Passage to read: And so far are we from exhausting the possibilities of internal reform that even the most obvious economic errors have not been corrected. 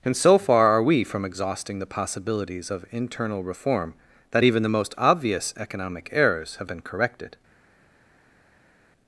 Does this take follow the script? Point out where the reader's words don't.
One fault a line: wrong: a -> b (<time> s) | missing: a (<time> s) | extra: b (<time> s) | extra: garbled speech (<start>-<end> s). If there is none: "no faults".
missing: not (6.7 s)